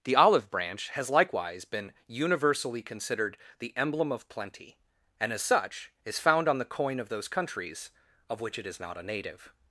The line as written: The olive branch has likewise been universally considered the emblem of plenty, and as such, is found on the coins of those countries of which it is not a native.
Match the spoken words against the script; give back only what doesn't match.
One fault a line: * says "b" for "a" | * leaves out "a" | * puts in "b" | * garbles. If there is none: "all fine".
* says "coin" for "coins"